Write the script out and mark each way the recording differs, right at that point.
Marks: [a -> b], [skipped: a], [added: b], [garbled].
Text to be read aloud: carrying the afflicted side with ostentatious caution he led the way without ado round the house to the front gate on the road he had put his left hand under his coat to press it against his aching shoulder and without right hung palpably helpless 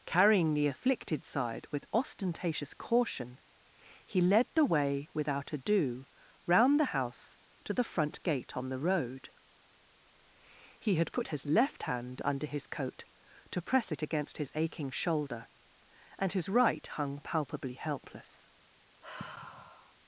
carrying the afflicted side with ostentatious caution he led the way without ado round the house to the front gate on the road he had put his left hand under his coat to press it against his aching shoulder and [without -> his] right hung palpably helpless